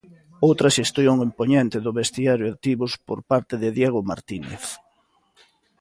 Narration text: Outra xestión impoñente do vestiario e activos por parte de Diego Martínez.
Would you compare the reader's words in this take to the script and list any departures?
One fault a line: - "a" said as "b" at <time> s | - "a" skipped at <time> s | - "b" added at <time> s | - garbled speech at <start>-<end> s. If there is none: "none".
none